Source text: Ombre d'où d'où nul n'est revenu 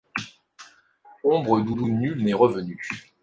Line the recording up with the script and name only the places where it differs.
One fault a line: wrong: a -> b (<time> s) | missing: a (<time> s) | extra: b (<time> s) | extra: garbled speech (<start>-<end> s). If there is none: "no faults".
no faults